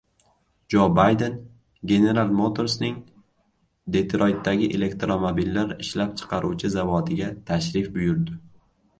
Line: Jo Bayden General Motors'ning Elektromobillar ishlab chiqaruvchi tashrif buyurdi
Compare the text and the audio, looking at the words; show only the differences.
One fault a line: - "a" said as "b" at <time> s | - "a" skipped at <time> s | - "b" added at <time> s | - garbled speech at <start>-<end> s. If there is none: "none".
- "Detroytdagi" added at 4.0 s
- "zavodiga" added at 6.8 s